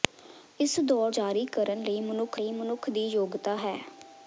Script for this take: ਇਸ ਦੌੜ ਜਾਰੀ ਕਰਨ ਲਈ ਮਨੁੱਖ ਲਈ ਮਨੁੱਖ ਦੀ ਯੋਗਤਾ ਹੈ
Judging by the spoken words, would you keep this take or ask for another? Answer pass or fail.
pass